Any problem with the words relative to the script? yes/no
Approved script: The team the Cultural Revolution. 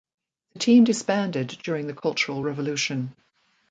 yes